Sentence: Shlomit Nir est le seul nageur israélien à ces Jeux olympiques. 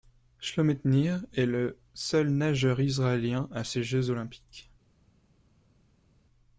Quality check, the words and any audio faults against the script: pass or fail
pass